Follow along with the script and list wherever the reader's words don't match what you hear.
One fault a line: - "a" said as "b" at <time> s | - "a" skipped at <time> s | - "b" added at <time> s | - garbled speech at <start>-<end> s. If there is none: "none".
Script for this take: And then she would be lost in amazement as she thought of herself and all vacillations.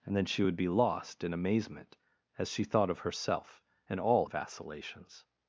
none